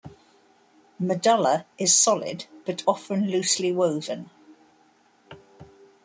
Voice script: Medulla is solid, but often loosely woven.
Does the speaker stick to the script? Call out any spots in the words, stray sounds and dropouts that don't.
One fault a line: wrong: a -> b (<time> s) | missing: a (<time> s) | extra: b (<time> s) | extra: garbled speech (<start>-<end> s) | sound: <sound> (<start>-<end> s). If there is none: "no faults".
no faults